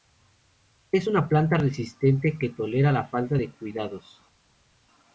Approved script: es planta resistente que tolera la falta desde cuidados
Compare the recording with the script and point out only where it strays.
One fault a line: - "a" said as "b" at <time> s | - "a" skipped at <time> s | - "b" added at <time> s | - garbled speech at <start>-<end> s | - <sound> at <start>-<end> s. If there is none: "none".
- "una" added at 1.1 s
- "desde" said as "de" at 3.4 s